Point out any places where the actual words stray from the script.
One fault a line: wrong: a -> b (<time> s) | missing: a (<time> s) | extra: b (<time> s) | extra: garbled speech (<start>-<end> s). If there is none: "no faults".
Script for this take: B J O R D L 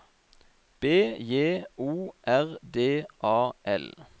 extra: A (3.2 s)